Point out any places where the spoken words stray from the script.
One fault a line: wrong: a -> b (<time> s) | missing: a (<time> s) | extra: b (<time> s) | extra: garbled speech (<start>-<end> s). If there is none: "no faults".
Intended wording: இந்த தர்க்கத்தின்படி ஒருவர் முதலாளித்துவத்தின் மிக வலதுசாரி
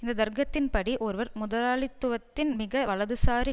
no faults